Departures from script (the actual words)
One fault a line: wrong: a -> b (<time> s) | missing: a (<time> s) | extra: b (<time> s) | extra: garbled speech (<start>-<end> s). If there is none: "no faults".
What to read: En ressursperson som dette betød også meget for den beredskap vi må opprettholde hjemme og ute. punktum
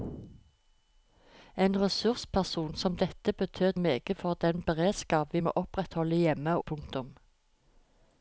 missing: også (3.8 s)
missing: ute (6.6 s)